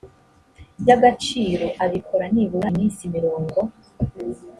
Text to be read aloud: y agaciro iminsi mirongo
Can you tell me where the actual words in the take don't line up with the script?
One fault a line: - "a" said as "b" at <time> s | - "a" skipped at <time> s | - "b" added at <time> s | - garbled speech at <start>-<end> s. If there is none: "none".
- "abikora nibura" added at 1.8 s